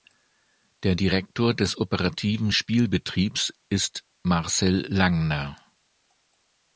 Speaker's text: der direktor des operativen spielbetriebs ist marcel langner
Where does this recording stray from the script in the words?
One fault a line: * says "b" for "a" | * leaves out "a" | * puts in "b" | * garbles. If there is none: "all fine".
all fine